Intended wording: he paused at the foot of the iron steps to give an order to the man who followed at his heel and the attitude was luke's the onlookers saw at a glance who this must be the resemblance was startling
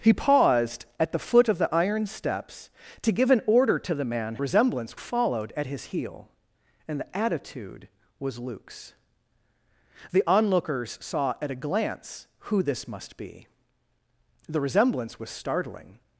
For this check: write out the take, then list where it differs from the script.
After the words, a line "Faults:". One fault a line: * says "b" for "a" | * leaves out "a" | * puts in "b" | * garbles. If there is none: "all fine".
he paused at the foot of the iron steps to give an order to the man resemblance followed at his heel and the attitude was luke's the onlookers saw at a glance who this must be the resemblance was startling
Faults:
* says "resemblance" for "who"